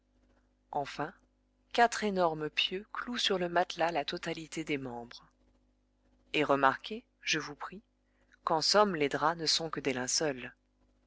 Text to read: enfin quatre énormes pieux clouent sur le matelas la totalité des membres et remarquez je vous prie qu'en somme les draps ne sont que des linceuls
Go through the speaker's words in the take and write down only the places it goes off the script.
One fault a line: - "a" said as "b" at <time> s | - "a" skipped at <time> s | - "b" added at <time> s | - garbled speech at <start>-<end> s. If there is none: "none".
none